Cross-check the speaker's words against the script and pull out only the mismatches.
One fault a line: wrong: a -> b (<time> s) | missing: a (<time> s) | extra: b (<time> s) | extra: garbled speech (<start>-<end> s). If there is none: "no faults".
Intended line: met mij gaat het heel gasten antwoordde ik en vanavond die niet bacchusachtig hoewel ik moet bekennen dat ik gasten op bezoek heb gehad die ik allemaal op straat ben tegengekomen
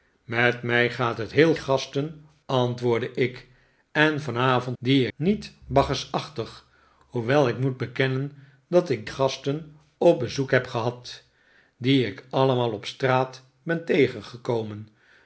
no faults